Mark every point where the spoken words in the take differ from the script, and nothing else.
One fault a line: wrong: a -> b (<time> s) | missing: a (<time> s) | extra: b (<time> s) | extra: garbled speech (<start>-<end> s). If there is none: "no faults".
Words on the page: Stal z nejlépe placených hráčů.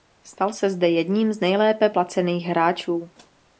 extra: se zde jedním (0.5 s)